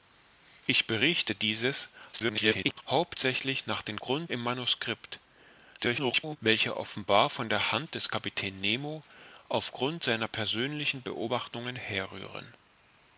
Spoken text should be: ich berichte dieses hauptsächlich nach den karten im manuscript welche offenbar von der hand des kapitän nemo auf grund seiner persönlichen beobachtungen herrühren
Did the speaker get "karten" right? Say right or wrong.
wrong